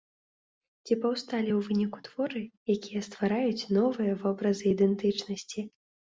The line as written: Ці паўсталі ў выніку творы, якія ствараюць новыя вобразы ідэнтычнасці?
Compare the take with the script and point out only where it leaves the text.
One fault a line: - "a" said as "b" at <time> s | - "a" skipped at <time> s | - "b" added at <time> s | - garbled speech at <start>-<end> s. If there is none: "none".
none